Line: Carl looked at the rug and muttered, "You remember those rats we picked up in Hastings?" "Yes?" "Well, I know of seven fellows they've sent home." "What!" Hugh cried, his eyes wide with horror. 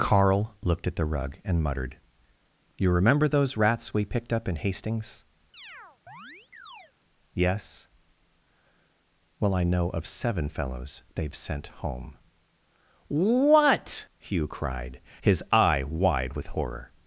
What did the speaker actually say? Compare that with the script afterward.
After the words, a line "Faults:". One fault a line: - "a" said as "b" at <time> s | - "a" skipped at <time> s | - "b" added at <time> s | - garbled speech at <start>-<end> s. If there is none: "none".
Carl looked at the rug and muttered, "You remember those rats we picked up in Hastings?" "Yes?" "Well, I know of seven fellows they've sent home." "What!" Hugh cried, his eye wide with horror.
Faults:
- "eyes" said as "eye" at 15.5 s